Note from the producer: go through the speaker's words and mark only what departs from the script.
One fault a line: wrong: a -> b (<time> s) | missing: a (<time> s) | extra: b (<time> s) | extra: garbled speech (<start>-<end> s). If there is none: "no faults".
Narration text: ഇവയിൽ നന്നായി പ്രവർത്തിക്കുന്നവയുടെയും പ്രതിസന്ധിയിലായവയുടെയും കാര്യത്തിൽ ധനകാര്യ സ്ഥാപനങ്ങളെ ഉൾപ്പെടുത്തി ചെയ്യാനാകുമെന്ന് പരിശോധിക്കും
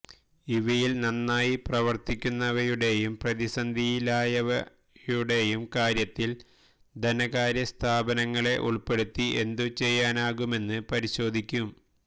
extra: എന്തു (9.4 s)